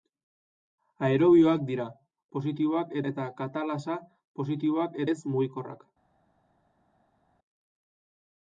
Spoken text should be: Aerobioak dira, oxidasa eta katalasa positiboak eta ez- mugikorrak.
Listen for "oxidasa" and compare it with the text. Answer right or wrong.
wrong